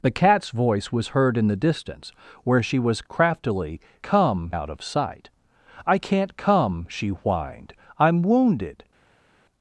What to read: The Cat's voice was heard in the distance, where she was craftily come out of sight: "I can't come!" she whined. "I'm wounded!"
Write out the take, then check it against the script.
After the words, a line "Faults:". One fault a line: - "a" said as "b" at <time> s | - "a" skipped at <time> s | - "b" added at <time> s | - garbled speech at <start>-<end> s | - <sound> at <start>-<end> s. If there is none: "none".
The Cat's voice was heard in the distance, where she was craftily come out of sight: "I can't come!" she whined. "I'm wounded!"
Faults:
none